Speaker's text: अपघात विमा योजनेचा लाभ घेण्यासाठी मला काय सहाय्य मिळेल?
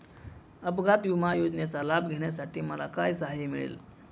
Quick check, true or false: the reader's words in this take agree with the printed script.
true